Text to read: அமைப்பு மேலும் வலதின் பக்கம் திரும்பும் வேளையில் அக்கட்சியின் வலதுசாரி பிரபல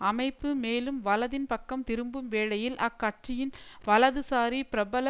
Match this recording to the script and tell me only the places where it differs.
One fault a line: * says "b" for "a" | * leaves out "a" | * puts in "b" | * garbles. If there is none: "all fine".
all fine